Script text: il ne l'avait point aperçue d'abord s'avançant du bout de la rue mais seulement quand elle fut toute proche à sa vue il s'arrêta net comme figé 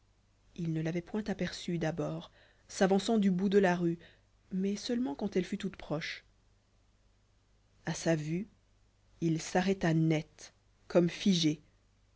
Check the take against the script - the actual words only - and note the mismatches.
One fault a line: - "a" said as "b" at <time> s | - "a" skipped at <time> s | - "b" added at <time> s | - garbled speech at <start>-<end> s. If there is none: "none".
none